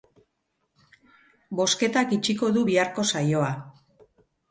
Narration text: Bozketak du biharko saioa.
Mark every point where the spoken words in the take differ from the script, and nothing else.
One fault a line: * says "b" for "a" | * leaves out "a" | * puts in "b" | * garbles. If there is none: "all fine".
* puts in "itxiko"